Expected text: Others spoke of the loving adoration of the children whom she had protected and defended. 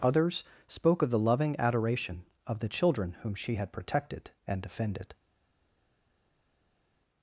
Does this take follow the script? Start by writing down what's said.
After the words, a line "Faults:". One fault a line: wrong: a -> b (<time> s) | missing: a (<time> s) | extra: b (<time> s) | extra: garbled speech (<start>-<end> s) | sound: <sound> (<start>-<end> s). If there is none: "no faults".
Others spoke of the loving adoration of the children whom she had protected and defended.
Faults:
no faults